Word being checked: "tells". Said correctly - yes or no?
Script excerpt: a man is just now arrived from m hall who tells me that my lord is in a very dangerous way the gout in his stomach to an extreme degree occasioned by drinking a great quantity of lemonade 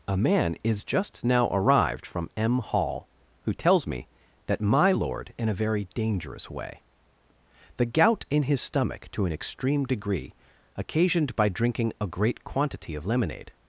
yes